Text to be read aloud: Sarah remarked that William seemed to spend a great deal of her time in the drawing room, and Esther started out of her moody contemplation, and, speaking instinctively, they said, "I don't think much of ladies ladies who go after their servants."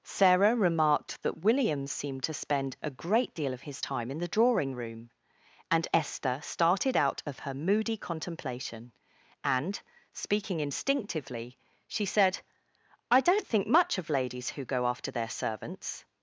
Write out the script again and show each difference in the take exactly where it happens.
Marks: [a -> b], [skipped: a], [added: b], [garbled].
Sarah remarked that William seemed to spend a great deal of [her -> his] time in the drawing room, and Esther started out of her moody contemplation, and, speaking instinctively, [they -> she] said, "I don't think much of ladies [skipped: ladies] who go after their servants."